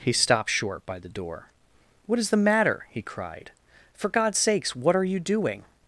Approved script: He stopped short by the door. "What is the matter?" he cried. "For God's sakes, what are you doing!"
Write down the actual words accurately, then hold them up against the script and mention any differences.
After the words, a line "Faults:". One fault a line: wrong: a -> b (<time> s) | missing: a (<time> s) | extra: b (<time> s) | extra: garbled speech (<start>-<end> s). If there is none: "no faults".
He stopped short by the door. "What is the matter?" he cried. "For God's sakes, what are you doing!"
Faults:
no faults